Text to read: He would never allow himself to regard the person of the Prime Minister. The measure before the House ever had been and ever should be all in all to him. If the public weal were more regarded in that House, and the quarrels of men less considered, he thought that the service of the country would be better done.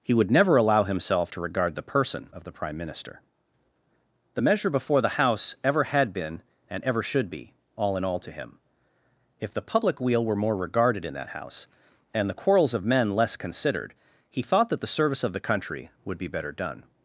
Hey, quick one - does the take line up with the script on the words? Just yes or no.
yes